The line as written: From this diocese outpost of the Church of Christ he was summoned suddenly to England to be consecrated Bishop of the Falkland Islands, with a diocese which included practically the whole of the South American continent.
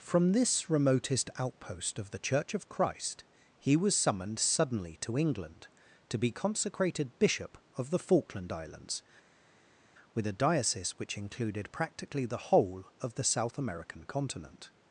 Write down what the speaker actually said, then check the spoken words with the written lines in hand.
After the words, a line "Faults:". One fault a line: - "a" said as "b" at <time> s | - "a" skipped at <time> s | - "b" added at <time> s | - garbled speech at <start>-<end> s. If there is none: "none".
From this remotest outpost of the Church of Christ he was summoned suddenly to England to be consecrated Bishop of the Falkland Islands, with a diocese which included practically the whole of the South American continent.
Faults:
- "diocese" said as "remotest" at 0.7 s